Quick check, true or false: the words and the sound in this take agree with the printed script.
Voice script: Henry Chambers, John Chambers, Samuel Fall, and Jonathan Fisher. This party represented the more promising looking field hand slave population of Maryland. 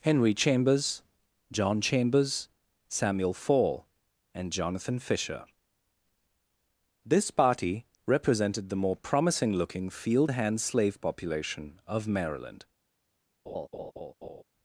false